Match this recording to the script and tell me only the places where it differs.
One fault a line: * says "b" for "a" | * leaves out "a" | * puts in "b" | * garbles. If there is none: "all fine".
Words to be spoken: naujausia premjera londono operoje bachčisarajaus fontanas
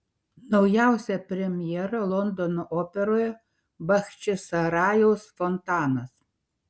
all fine